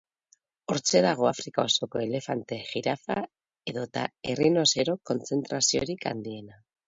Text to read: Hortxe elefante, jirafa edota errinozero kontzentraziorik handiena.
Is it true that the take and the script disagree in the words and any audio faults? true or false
true